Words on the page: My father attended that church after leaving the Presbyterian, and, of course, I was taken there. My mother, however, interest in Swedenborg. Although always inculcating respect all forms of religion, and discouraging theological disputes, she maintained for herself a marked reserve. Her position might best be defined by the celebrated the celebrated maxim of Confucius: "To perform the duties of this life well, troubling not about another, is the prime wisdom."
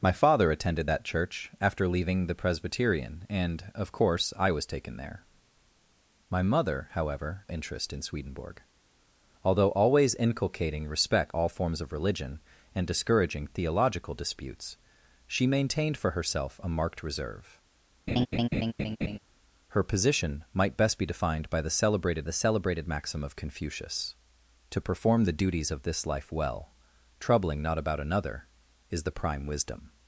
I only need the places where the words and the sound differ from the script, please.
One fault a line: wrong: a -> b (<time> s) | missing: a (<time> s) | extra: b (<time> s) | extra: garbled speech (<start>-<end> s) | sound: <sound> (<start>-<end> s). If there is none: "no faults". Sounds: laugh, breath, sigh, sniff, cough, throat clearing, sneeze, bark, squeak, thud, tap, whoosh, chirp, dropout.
sound: laugh (18.1-19.2 s)